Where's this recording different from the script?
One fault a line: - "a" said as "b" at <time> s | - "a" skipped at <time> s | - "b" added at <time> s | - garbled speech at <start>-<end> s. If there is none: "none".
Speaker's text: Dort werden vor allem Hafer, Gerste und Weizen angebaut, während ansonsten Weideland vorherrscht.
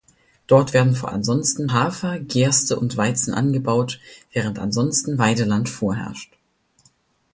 - "allem" said as "ansonsten" at 1.1 s